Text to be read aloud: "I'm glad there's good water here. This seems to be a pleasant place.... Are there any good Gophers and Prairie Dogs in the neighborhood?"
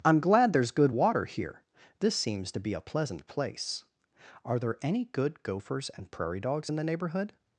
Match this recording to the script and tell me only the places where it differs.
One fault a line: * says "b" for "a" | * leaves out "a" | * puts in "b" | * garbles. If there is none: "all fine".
all fine